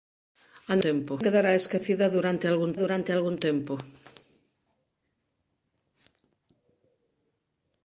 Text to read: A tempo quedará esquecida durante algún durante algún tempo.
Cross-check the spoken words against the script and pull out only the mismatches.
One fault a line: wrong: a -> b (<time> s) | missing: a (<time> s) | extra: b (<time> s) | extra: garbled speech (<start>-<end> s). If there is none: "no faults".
no faults